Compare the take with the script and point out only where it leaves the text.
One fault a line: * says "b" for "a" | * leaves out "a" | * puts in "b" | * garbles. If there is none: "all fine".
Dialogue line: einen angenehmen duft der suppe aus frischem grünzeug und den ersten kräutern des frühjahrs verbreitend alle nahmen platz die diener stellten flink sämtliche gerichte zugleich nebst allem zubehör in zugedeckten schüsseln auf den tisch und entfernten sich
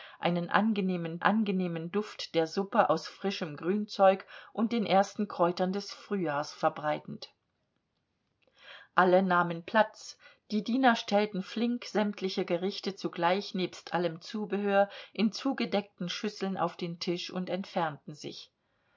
* puts in "angenehmen"